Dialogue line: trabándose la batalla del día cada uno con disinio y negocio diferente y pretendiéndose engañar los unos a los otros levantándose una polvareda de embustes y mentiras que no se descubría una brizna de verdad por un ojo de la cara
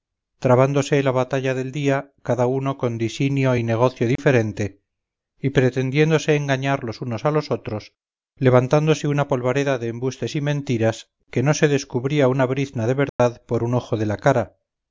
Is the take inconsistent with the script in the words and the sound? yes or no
yes